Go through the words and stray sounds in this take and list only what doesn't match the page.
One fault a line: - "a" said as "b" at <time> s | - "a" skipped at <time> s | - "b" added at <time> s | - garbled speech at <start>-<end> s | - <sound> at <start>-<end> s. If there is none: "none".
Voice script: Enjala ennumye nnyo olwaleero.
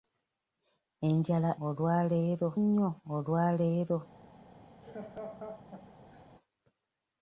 - "ennumye" said as "olwaleero" at 1.7 s
- laugh at 4.8-6.3 s